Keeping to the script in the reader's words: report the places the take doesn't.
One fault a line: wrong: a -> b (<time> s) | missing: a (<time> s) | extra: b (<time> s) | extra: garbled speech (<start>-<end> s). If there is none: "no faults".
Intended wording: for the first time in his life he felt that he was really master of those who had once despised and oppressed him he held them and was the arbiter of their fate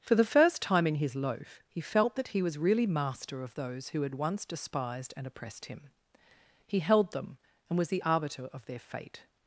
wrong: life -> loaf (1.1 s)